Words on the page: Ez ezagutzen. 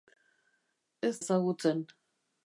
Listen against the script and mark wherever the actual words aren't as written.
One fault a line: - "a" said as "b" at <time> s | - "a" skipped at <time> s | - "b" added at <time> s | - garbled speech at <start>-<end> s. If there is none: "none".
none